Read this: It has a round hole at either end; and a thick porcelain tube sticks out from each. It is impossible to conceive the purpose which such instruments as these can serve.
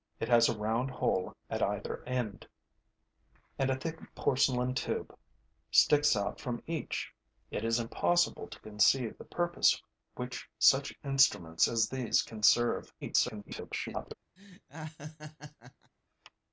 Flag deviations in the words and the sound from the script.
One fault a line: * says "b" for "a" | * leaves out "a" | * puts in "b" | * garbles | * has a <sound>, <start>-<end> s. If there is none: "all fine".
* garbles
* has a laugh, 14.4-15.9 s